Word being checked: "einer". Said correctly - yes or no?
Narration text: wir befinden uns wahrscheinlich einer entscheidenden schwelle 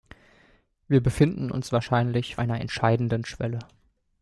yes